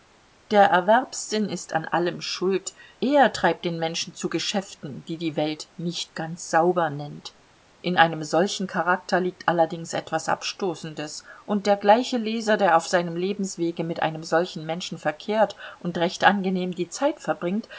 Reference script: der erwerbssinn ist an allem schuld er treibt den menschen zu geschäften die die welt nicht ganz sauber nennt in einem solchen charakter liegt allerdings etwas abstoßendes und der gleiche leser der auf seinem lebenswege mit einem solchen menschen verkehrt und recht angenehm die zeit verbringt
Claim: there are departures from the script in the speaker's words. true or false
false